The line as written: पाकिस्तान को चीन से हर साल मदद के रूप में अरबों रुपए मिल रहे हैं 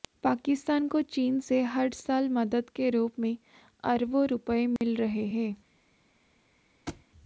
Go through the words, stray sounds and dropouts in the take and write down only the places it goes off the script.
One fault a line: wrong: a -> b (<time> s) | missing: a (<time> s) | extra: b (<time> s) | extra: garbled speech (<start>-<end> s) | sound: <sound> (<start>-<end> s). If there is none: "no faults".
sound: dropout (4.8-4.8 s)
sound: thud (6.9-7.1 s)